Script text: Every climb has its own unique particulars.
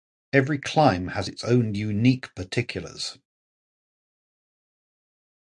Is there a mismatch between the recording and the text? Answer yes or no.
no